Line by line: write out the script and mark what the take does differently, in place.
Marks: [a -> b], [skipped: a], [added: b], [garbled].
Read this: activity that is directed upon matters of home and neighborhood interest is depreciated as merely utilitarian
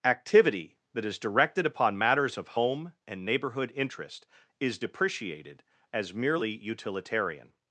activity that is directed upon matters of home and neighborhood interest is depreciated as merely utilitarian